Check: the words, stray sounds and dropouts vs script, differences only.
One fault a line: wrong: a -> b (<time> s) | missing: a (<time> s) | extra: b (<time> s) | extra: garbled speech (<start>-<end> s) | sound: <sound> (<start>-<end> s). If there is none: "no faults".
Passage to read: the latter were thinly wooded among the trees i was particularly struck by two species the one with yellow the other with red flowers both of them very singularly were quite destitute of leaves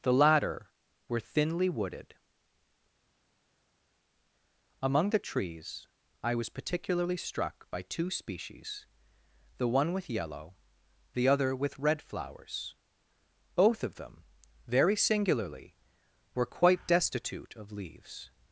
no faults